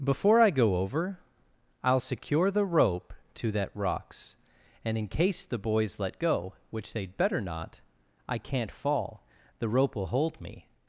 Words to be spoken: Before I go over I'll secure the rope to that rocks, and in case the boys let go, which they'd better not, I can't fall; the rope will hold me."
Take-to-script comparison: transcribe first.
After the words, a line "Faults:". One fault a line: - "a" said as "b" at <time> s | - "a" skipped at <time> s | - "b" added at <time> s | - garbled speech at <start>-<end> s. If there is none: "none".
Before I go over I'll secure the rope to that rocks, and in case the boys let go, which they'd better not, I can't fall; the rope will hold me."
Faults:
none